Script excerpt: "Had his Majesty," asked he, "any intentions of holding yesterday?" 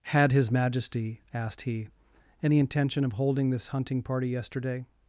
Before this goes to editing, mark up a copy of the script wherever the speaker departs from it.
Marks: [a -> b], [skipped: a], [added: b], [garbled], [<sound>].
"Had his Majesty," asked he, "any [intentions -> intention] of holding [added: this hunting party] yesterday?"